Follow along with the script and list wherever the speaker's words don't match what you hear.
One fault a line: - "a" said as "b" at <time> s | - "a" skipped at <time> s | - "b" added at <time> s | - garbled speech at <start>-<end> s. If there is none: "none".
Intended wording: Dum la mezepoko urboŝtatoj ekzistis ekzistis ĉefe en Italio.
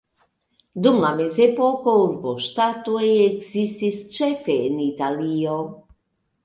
- "ekzistis" skipped at 4.0 s